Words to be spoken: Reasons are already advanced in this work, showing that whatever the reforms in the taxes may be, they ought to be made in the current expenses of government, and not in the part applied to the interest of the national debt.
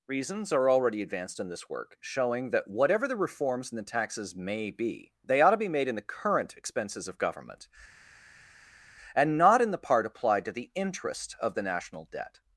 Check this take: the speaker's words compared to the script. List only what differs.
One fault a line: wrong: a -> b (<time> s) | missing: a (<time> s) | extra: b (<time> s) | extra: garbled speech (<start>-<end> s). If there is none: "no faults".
no faults